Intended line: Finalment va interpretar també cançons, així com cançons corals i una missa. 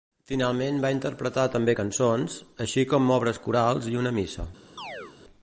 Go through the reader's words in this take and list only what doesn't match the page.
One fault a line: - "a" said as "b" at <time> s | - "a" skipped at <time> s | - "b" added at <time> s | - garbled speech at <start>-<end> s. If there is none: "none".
- "cançons" said as "obres" at 3.2 s